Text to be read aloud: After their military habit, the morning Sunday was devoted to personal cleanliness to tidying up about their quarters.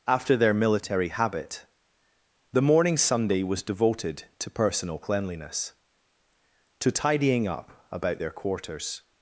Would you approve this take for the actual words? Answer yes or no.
yes